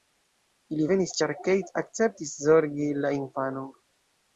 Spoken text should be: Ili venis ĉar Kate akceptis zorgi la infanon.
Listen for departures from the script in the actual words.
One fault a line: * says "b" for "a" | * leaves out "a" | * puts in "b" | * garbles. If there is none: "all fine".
all fine